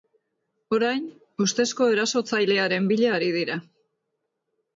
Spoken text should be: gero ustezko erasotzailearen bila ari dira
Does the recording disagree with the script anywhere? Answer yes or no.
yes